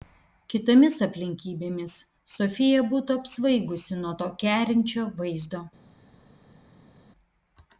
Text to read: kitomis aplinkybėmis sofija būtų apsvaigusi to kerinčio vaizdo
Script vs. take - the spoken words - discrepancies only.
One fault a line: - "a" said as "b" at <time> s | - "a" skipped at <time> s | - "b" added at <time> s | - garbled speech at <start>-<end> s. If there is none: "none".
- "nuo" added at 4.0 s